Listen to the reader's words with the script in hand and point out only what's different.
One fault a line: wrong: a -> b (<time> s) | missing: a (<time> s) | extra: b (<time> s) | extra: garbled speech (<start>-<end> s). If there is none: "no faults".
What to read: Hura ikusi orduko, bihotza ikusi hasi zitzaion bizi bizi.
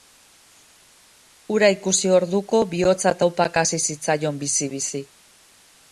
wrong: ikusi -> taupaka (3.2 s)